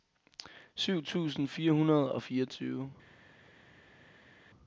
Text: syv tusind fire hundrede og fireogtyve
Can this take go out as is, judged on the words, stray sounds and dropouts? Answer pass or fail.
pass